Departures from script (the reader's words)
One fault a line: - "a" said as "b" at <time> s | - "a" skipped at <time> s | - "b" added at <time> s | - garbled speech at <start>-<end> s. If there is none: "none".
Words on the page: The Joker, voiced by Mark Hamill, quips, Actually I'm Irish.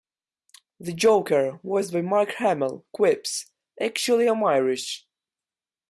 none